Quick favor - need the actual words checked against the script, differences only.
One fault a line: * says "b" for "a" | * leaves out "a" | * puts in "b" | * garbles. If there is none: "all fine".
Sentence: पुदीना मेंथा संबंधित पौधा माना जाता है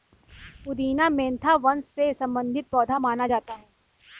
* puts in "वंश से"